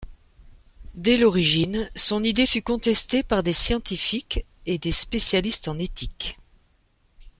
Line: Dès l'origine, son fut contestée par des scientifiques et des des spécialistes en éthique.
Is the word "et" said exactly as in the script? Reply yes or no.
yes